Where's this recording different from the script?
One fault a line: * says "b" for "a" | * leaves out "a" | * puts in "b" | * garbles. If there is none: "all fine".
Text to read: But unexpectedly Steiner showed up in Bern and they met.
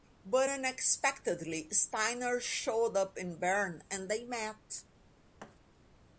all fine